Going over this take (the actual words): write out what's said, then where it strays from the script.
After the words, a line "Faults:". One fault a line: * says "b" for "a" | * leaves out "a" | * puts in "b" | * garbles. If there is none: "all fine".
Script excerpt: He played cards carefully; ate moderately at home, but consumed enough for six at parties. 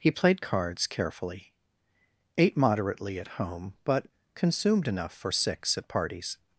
He played cards carefully; ate moderately at home, but consumed enough for six at parties.
Faults:
all fine